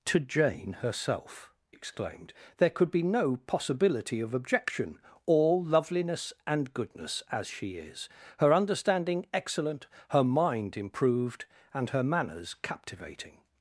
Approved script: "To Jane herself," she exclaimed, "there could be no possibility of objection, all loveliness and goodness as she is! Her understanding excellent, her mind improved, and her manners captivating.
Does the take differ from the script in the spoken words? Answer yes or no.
yes